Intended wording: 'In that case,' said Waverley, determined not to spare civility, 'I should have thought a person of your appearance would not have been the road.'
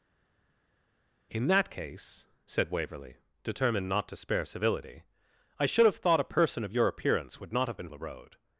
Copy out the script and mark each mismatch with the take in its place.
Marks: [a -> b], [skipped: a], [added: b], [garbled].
'In that case,' said Waverley, determined not to spare civility, 'I should have thought a person of your appearance would not have been the road.'